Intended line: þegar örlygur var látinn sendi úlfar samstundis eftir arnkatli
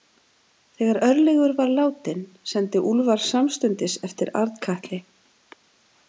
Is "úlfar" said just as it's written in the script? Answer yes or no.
yes